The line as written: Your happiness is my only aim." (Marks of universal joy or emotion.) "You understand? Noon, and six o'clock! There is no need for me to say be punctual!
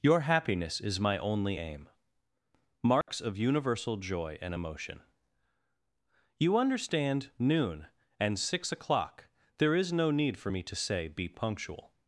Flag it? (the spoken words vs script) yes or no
yes